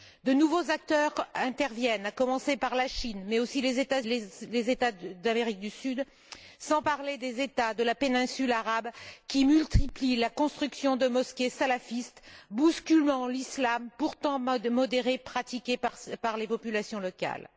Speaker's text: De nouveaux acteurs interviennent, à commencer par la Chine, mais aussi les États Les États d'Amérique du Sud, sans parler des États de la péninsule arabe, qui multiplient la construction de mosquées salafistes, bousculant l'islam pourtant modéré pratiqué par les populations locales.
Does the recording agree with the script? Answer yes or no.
yes